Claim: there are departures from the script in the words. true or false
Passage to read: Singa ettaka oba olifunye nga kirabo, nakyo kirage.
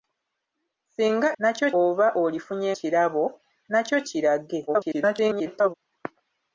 true